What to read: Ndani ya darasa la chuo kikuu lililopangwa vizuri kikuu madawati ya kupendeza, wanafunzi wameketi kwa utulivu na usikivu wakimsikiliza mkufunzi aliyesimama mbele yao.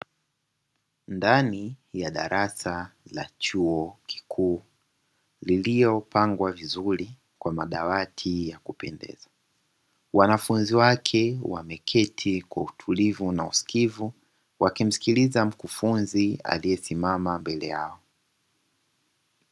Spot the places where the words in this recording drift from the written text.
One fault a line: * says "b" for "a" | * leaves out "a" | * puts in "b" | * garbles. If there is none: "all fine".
* says "kwa" for "kikuu"
* puts in "wake"